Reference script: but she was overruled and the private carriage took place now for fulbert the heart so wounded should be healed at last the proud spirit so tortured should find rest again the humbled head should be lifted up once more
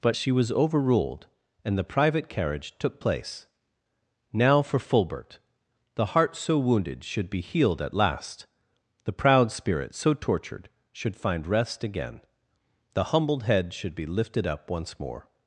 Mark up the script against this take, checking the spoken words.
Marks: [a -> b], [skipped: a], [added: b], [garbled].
but she was overruled and the private carriage took place now for fulbert the heart so wounded should be healed at last the proud spirit so tortured should find rest again the humbled head should be lifted up once more